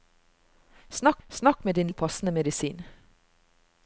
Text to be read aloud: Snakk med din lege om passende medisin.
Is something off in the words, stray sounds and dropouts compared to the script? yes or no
yes